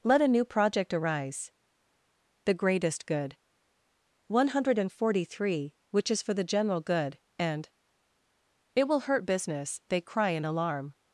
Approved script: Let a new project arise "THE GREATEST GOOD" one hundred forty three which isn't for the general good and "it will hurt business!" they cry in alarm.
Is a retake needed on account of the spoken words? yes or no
yes